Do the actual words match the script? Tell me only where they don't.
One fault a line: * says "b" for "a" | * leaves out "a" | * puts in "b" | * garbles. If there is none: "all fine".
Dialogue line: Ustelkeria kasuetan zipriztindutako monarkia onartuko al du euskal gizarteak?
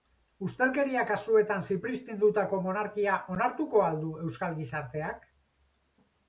all fine